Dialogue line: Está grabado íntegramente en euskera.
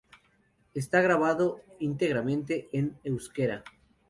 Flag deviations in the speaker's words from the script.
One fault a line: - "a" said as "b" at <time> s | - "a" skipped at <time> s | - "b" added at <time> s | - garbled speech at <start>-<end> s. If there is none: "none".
none